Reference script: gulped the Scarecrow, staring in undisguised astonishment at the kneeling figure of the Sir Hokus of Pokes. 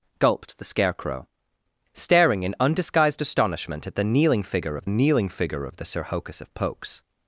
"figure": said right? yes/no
yes